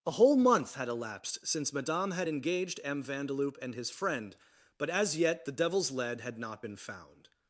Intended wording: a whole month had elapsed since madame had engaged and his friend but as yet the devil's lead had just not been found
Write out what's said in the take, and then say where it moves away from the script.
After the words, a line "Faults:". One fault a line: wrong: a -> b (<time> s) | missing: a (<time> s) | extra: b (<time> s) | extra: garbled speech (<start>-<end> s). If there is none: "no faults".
a whole month had elapsed since madame had engaged m vandeloup and his friend but as yet the devil's lead had not been found
Faults:
extra: m vandeloup (2.8 s)
missing: just (6.4 s)